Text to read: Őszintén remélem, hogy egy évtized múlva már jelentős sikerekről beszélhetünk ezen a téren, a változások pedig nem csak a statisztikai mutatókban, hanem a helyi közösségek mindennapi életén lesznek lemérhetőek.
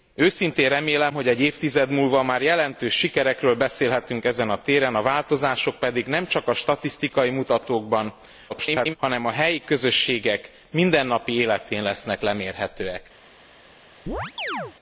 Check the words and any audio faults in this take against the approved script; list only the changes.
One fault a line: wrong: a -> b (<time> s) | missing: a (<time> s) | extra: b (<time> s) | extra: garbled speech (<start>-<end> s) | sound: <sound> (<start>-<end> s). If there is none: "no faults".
extra: garbled speech (8.5-9.0 s)
sound: chirp (14.1-14.7 s)